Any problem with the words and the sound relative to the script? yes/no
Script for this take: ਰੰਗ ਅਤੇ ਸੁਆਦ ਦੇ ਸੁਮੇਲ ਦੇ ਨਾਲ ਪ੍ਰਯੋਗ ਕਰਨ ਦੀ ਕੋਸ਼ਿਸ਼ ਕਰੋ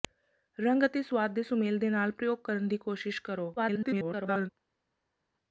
yes